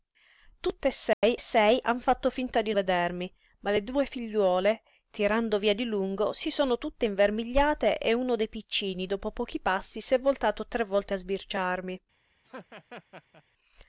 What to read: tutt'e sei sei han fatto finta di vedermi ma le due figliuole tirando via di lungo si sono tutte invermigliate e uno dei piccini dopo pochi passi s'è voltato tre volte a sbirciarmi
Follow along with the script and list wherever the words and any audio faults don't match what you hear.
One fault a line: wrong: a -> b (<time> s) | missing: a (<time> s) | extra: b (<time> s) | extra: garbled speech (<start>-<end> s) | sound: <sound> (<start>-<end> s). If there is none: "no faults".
sound: dropout (1.1-1.2 s)
sound: laugh (12.4-13.4 s)